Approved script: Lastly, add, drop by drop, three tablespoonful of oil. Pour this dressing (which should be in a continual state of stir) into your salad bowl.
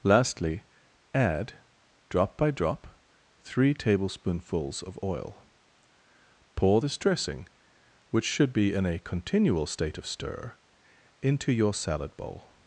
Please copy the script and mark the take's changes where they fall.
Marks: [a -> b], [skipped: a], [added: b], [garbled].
Lastly, add, drop by drop, three [tablespoonful -> tablespoonfuls] of oil. Pour this dressing (which should be in a continual state of stir) into your salad bowl.